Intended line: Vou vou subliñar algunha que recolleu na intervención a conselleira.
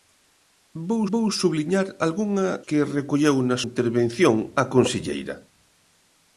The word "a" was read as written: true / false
true